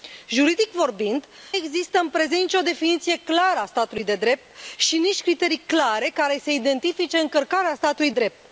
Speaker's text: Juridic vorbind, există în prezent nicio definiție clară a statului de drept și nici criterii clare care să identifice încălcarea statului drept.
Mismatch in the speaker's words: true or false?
false